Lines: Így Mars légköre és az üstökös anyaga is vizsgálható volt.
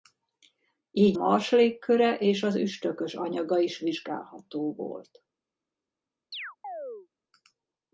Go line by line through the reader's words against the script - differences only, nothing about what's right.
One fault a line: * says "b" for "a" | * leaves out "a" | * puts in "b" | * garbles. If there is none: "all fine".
all fine